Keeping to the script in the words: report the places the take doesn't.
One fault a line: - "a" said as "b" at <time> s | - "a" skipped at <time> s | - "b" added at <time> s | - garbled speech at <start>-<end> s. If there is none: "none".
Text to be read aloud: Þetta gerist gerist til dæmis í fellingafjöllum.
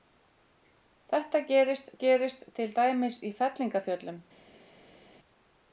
none